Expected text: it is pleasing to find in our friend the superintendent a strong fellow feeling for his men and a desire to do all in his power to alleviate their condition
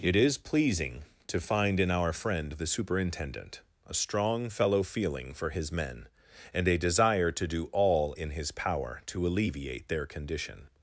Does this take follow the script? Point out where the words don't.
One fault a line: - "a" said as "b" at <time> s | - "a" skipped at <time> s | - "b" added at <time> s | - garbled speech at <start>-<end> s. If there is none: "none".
none